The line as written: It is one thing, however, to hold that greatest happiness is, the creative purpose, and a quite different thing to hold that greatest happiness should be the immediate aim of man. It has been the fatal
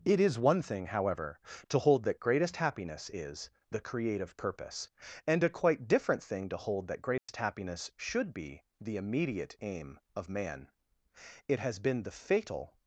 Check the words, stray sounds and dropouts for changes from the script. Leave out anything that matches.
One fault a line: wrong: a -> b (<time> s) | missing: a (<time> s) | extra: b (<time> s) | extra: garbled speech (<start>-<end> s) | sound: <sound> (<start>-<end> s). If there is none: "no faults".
sound: dropout (7.2-7.3 s)